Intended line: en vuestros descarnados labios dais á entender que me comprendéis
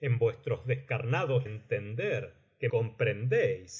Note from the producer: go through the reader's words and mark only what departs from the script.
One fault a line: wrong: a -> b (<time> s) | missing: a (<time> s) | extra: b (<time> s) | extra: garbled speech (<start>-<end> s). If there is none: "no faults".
missing: labios dais á (1.5 s)
missing: me (2.7 s)